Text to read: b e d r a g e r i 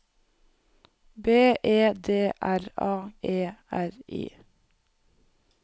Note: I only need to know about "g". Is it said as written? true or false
false